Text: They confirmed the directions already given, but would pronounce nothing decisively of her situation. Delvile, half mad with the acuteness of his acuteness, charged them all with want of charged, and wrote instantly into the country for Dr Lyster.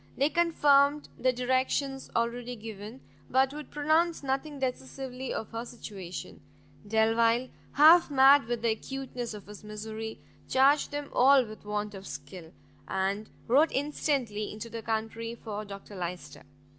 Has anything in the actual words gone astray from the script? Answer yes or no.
yes